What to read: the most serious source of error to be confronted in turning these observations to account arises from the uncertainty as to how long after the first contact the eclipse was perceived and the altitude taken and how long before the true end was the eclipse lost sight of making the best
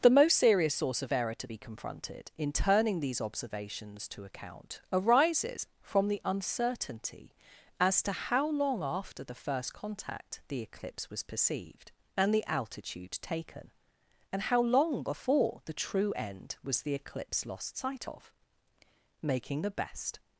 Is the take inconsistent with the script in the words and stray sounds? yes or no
no